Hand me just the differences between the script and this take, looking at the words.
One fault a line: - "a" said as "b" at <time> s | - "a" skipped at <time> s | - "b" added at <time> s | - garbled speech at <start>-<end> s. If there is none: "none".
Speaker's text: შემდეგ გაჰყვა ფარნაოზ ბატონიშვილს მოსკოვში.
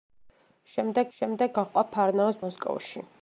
- "შემდეგ" added at 1.2 s
- "ბატონიშვილს" skipped at 2.4 s